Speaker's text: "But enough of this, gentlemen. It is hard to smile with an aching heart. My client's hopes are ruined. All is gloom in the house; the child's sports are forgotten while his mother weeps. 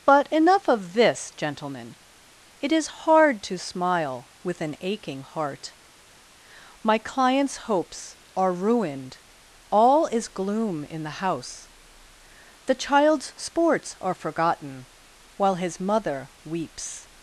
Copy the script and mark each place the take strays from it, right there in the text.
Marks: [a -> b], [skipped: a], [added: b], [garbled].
"But enough of this, gentlemen. It is hard to smile with an aching heart. My client's hopes are ruined. All is gloom in the house; the child's sports are forgotten while his mother weeps.